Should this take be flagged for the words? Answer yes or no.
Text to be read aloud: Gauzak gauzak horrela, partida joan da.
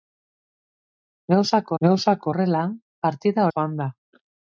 no